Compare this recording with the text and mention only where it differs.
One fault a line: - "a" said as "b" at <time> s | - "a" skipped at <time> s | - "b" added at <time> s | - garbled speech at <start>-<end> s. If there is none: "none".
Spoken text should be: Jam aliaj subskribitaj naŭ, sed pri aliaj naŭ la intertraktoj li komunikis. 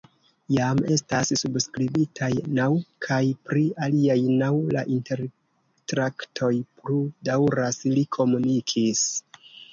- "aliaj" said as "estas" at 0.9 s
- "sed" said as "kaj" at 3.1 s
- "plu daŭras" added at 6.8 s